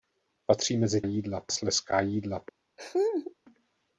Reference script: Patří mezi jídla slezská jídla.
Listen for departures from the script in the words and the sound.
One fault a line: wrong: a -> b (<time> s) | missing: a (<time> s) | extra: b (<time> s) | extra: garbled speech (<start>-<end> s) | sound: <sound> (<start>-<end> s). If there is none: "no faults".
sound: laugh (2.8-3.3 s)